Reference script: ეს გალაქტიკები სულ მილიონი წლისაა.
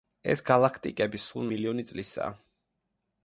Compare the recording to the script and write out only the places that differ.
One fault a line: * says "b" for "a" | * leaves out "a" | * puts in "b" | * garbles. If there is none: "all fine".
all fine